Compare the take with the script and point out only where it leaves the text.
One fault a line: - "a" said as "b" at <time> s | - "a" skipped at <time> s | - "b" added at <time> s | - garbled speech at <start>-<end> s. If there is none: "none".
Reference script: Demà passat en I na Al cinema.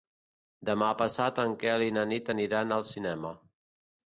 - "Quel" added at 1.6 s
- "Nit aniran" added at 2.1 s